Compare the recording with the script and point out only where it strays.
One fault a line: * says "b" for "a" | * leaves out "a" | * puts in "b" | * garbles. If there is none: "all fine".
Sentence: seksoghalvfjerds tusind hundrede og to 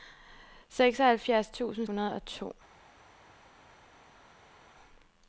all fine